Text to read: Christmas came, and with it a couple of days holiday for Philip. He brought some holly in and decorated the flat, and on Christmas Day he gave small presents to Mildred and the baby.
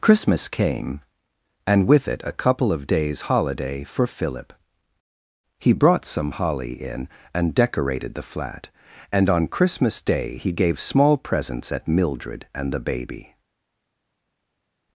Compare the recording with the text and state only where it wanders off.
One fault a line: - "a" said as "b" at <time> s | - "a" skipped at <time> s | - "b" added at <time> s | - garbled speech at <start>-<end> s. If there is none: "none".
- "to" said as "at" at 11.7 s